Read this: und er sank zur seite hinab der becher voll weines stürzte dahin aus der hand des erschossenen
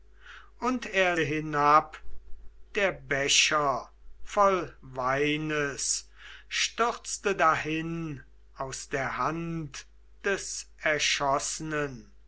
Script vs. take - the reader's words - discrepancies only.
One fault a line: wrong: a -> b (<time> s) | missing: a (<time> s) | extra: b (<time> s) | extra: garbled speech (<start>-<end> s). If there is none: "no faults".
missing: sank zur seite (1.1 s)